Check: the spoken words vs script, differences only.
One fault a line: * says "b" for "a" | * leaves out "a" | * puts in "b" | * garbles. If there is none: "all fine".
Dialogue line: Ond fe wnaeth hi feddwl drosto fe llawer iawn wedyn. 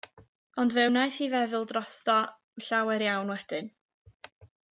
* leaves out "fe"